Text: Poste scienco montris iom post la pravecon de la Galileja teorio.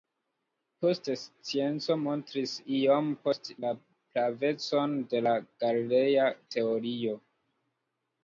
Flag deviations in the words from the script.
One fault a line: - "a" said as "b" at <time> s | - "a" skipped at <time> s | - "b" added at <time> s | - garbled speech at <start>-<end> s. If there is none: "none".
none